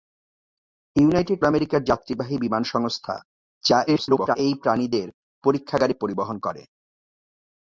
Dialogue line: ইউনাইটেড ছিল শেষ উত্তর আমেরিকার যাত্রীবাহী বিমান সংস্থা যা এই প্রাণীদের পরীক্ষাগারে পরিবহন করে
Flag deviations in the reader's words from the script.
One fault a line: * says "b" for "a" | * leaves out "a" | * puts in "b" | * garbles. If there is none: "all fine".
* leaves out "ছিল শেষ উত্তর"
* garbles